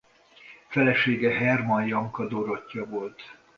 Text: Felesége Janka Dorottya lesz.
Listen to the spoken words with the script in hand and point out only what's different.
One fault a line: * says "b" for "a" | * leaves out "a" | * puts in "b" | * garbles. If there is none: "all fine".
* puts in "Hermann"
* says "volt" for "lesz"